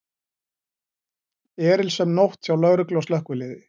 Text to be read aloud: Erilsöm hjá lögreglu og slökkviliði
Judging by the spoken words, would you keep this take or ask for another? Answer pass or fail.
fail